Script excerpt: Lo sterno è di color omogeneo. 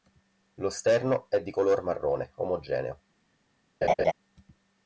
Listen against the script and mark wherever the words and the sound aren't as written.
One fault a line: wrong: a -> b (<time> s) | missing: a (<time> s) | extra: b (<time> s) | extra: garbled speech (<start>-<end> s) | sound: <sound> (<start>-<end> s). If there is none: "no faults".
extra: marrone (1.8 s)
sound: laugh (3.8-4.1 s)